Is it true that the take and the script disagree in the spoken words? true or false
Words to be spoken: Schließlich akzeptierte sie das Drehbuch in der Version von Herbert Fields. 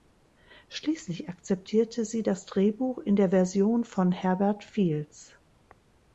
false